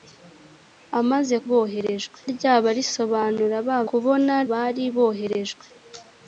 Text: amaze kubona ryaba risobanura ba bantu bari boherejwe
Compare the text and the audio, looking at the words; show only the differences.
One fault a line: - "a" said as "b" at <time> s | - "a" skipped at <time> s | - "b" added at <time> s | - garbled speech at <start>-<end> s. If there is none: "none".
- "kubona" said as "boherejwe" at 1.5 s
- "bantu" said as "kubona" at 3.9 s